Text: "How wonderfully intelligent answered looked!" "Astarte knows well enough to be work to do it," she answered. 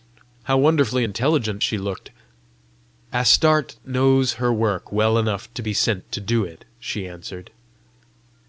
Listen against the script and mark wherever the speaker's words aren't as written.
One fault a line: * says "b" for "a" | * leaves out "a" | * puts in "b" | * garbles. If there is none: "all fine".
* says "she" for "answered"
* puts in "her work"
* says "sent" for "work"